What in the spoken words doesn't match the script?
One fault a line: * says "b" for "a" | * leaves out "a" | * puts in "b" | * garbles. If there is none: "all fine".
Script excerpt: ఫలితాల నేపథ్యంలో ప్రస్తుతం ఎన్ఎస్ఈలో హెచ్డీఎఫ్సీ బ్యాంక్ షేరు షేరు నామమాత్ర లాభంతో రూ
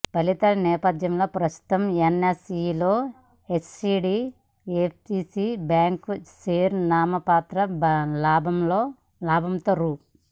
* leaves out "షేరు"